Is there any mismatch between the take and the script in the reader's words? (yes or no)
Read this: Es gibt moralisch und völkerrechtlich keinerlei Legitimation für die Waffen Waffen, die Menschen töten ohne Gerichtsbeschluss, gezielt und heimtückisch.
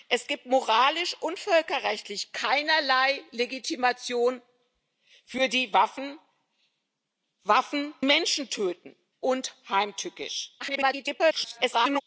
yes